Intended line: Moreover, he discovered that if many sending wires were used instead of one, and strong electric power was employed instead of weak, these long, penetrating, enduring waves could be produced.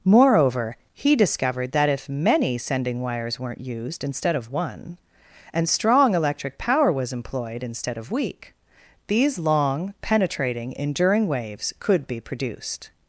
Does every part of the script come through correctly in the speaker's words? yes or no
no